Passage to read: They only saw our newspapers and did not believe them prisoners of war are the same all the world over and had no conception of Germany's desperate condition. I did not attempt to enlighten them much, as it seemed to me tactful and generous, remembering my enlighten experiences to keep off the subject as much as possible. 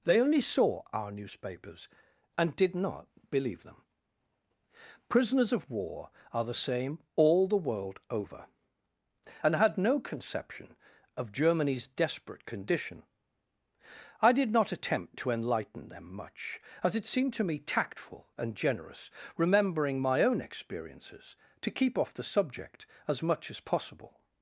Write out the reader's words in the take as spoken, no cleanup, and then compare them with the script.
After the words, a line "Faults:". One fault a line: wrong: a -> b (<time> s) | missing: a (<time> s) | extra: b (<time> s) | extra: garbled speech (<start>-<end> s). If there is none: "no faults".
They only saw our newspapers and did not believe them prisoners of war are the same all the world over and had no conception of Germany's desperate condition. I did not attempt to enlighten them much, as it seemed to me tactful and generous, remembering my own experiences to keep off the subject as much as possible.
Faults:
wrong: enlighten -> own (20.2 s)